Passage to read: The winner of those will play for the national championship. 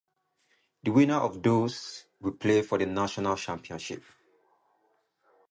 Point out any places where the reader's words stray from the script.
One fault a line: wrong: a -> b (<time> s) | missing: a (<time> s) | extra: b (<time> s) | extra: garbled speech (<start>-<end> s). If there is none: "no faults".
no faults